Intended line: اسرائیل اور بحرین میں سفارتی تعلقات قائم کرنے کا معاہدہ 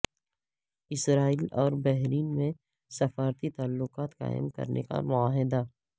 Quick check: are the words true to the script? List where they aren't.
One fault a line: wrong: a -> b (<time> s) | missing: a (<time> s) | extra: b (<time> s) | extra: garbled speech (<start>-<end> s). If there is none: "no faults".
no faults